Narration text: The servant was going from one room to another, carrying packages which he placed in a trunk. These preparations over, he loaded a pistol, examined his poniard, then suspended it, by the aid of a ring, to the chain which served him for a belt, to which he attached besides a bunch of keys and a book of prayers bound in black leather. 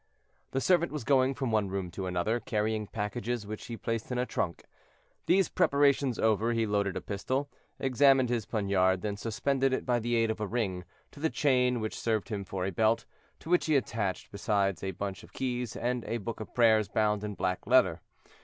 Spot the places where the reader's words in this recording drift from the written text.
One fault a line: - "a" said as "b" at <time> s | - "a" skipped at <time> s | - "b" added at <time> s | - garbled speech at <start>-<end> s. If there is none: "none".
none